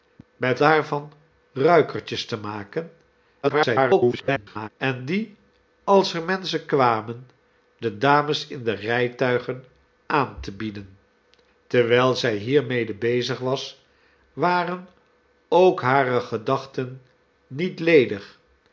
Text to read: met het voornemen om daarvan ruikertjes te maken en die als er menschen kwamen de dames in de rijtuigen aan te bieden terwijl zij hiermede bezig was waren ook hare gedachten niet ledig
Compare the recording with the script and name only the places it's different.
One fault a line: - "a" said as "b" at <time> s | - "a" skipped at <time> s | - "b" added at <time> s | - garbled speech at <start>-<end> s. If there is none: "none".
- "het voornemen om" skipped at 0.6 s
- garbled speech at 3.4-4.7 s